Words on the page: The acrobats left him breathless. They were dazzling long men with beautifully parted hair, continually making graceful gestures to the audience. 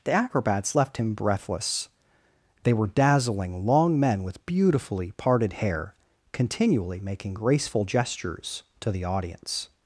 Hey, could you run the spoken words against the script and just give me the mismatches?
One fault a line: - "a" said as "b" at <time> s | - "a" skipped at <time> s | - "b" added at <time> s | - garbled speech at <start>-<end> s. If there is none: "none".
none